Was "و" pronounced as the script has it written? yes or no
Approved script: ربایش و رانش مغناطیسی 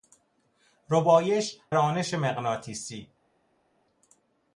no